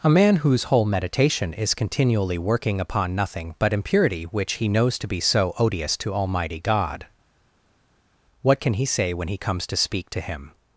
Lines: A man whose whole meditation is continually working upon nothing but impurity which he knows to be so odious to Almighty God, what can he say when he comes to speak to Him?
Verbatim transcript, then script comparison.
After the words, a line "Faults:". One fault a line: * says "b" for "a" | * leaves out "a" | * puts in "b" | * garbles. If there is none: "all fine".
A man whose whole meditation is continually working upon nothing but impurity which he knows to be so odious to Almighty God, what can he say when he comes to speak to Him?
Faults:
all fine